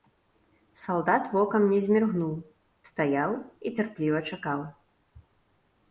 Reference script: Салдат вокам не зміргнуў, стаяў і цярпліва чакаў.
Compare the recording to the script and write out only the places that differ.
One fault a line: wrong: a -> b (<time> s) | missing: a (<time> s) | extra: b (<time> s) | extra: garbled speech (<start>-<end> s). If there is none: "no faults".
no faults